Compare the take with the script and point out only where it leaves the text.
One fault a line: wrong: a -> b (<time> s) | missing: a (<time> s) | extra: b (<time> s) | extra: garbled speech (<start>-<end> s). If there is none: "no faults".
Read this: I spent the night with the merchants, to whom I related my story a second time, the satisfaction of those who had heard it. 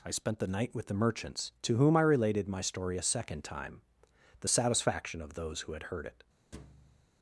no faults